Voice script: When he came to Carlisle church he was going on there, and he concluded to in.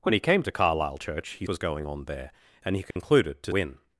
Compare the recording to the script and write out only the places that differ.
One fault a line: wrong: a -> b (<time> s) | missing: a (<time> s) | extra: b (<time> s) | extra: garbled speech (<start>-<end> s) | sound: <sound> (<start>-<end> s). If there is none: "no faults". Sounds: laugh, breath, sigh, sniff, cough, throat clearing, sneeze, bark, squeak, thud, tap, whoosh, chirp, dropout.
sound: dropout (2.9-3.0 s)